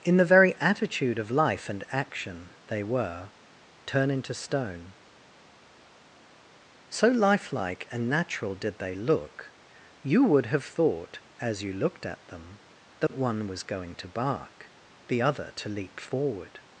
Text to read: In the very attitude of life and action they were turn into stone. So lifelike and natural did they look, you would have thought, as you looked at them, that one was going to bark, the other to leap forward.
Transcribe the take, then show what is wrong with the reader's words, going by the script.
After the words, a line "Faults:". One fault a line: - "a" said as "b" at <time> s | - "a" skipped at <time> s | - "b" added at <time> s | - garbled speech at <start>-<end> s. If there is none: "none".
In the very attitude of life and action they were turn into stone. So lifelike and natural did they look, you would have thought, as you looked at them, that one was going to bark, the other to leap forward.
Faults:
none